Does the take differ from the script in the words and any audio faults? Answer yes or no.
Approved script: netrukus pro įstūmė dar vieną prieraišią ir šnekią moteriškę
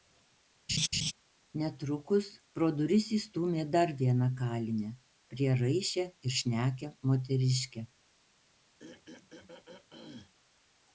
yes